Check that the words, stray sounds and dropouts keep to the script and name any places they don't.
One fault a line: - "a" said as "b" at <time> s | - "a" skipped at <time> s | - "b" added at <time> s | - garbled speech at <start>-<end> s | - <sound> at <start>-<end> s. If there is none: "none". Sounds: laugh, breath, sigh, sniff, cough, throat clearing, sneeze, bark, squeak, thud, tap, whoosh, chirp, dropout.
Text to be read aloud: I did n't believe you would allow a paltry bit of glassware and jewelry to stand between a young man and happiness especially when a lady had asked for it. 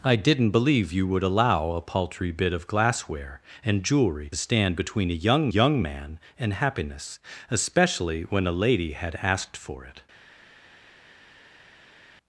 - "to" skipped at 4.3 s
- "young" added at 5.5 s